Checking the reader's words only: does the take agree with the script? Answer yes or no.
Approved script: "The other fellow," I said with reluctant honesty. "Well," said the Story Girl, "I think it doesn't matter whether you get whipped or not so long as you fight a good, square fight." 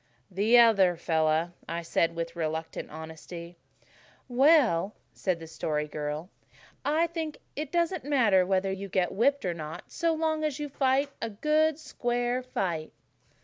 yes